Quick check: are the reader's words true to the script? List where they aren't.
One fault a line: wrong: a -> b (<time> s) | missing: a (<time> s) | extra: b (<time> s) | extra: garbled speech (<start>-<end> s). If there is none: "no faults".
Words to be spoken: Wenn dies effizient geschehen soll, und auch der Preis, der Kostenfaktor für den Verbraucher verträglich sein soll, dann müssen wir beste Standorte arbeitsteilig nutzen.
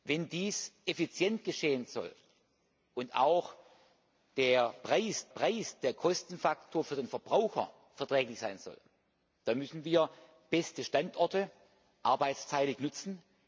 extra: Preis (5.3 s)